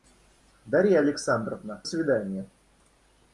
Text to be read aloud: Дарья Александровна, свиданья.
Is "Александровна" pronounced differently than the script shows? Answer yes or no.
no